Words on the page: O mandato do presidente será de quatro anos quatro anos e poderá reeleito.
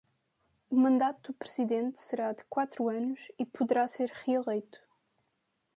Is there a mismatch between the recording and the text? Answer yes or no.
yes